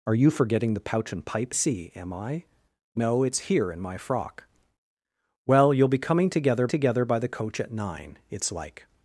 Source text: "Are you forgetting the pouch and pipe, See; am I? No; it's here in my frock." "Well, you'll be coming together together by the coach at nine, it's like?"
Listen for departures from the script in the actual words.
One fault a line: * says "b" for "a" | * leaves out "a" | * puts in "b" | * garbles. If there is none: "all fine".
all fine